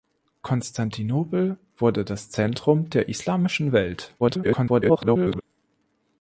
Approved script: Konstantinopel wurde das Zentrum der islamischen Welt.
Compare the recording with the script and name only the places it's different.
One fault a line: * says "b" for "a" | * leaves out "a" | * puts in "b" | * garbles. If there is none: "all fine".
* garbles